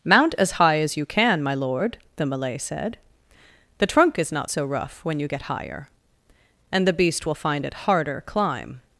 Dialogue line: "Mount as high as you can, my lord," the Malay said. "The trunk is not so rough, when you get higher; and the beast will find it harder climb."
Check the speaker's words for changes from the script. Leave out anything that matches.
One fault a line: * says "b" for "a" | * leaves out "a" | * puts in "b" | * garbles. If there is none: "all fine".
all fine